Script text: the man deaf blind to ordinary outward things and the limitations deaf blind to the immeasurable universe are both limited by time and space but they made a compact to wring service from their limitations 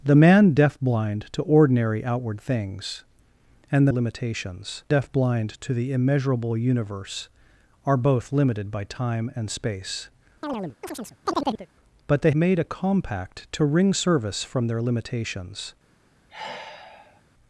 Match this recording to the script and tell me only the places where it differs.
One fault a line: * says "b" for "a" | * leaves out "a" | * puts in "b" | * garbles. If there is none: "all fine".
all fine